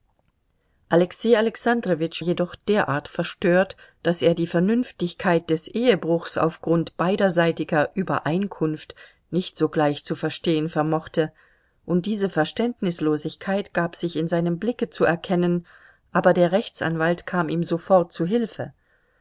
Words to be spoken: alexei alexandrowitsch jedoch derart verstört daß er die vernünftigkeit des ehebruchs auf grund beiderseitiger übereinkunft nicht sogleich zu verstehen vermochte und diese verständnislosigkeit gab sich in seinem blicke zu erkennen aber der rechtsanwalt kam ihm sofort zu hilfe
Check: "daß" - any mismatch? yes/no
no